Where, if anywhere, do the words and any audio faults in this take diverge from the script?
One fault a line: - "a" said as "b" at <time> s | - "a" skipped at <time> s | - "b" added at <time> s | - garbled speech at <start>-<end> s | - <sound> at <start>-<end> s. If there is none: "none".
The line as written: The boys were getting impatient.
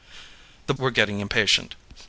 - "boys" skipped at 0.7 s